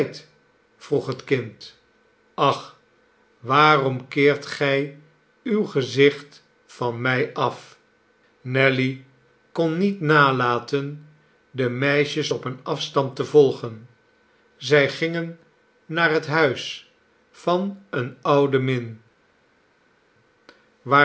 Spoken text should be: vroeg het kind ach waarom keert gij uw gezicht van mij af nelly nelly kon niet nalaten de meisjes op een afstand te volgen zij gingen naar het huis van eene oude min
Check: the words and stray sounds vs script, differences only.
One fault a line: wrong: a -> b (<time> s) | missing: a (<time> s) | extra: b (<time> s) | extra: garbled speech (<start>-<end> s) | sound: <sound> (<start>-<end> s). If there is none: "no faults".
missing: nelly (9.1 s)